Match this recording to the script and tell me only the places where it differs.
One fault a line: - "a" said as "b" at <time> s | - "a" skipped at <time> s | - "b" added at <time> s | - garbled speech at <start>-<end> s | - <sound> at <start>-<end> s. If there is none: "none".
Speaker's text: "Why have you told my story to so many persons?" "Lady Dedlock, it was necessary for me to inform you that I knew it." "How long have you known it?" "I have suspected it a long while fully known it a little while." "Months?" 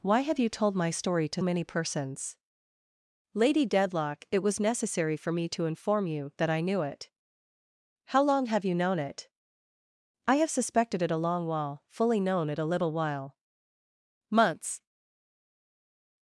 - "so" skipped at 1.4 s